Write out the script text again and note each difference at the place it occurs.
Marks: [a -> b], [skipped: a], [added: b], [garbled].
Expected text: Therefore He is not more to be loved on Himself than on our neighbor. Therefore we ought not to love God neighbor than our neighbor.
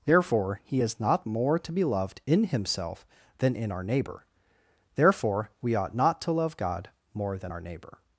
Therefore He is not more to be loved [on -> in] Himself than [on -> in] our neighbor. Therefore we ought not to love God [neighbor -> more] than our neighbor.